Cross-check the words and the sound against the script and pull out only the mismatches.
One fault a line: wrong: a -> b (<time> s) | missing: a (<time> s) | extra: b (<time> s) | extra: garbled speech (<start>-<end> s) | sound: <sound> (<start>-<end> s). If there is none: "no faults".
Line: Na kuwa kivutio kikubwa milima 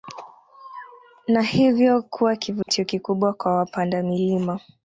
extra: hivyo (1.4 s)
sound: dropout (2.6-2.7 s)
extra: kwa wapanda (3.3 s)